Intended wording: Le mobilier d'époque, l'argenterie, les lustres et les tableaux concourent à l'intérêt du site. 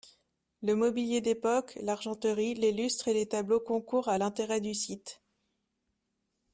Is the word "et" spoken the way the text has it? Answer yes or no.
yes